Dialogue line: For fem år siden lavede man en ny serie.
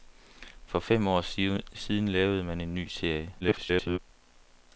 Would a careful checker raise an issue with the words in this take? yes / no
yes